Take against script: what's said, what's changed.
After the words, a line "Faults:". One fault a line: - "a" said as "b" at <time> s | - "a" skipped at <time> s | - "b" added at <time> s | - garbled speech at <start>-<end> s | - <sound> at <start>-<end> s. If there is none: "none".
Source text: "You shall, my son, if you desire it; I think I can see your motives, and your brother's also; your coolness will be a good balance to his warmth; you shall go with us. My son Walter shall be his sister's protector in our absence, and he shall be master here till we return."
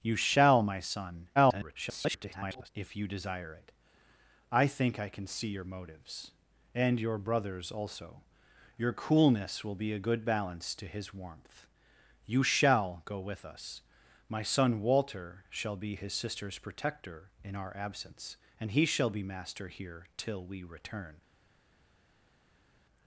"You shall, my son, [garbled] if you desire it; I think I can see your motives, and your brother's also; your coolness will be a good balance to his warmth; you shall go with us. My son Walter shall be his sister's protector in our absence, and he shall be master here till we return."
Faults:
- garbled speech at 1.4-2.7 s